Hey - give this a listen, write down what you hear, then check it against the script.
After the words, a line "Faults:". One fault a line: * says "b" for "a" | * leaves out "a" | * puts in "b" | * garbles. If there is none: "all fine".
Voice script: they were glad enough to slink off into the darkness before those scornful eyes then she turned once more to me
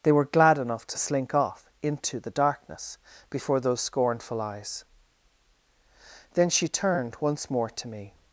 they were glad enough to slink off into the darkness before those scornful eyes then she turned once more to me
Faults:
all fine